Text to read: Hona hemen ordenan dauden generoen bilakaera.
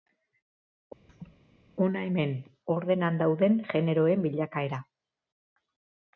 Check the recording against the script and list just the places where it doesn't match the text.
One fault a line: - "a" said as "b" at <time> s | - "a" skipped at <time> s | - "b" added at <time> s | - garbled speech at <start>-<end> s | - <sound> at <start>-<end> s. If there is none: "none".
- laugh at 1.1-1.4 s